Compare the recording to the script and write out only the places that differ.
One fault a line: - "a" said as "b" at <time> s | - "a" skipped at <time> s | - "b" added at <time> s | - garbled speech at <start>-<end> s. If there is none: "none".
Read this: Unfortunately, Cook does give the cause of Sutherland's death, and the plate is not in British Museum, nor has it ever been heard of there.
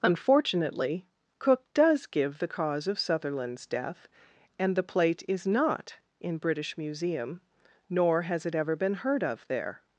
none